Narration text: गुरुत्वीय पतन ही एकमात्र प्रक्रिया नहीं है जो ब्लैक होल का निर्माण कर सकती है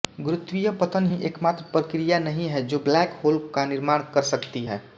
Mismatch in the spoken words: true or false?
false